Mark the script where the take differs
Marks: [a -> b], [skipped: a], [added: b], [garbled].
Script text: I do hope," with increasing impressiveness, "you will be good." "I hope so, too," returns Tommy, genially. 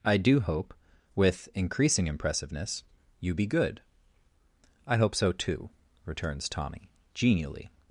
I do hope," with increasing impressiveness, "you [skipped: will] be good." "I hope so, too," returns Tommy, genially.